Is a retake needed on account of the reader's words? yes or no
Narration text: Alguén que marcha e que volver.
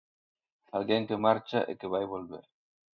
yes